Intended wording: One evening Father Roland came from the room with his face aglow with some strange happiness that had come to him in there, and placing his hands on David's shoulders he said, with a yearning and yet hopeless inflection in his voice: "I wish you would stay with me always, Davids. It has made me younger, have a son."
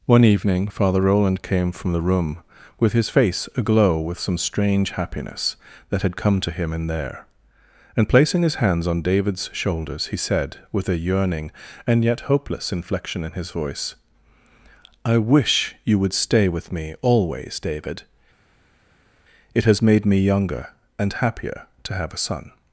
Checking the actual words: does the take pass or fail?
fail